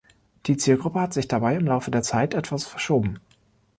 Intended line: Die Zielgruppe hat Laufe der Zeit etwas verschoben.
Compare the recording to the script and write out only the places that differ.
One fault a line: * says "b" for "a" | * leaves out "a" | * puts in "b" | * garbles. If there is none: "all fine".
* puts in "sich dabei im"